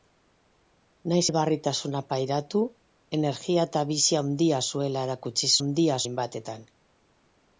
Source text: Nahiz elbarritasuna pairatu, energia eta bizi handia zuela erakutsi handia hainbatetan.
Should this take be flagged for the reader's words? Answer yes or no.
no